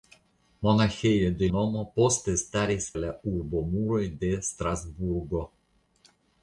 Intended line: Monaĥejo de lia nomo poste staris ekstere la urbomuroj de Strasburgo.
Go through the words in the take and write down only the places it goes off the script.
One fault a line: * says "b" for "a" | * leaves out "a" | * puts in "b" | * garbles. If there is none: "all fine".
* leaves out "lia"
* leaves out "ekstere"